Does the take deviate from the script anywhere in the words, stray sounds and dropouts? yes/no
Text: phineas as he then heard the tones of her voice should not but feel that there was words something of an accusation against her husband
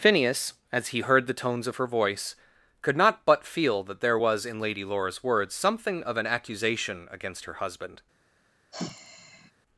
yes